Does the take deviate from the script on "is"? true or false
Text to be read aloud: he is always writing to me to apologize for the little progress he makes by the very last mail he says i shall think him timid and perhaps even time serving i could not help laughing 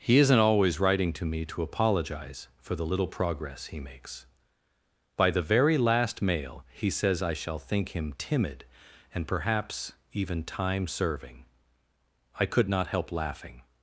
true